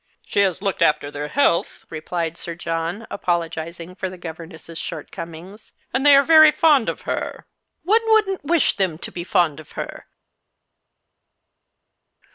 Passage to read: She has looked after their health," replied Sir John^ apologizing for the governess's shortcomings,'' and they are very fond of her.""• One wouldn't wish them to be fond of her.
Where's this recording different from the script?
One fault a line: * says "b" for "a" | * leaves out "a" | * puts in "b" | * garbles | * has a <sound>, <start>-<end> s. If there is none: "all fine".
all fine